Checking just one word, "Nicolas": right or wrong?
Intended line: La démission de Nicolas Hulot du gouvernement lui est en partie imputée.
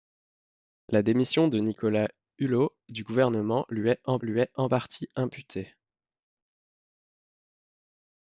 right